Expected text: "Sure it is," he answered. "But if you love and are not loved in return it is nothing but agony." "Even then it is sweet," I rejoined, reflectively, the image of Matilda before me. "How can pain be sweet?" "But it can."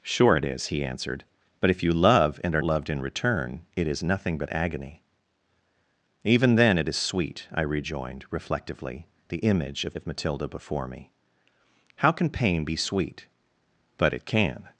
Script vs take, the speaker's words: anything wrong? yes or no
yes